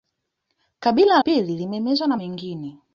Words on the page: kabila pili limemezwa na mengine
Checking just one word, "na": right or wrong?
right